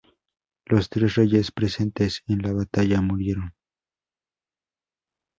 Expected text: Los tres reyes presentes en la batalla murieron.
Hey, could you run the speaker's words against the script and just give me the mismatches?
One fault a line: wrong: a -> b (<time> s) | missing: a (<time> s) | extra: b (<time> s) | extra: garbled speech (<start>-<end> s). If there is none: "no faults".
no faults